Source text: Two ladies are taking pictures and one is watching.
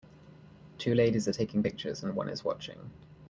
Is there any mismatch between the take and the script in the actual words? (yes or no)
no